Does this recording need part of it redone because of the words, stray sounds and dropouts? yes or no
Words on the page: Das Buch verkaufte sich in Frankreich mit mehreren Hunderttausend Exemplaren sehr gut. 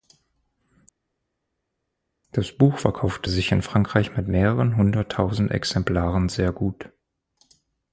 no